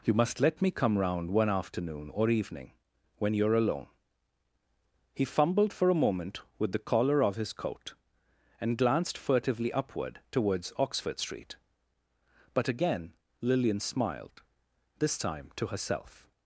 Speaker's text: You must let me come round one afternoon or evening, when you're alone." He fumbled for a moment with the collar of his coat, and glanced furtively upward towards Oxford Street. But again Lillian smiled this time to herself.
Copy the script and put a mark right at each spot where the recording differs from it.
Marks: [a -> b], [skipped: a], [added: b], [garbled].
You must let me come round one afternoon or evening, when you're alone." He fumbled for a moment with the collar of his coat, and glanced furtively upward towards Oxford Street. But again Lillian smiled this time to herself.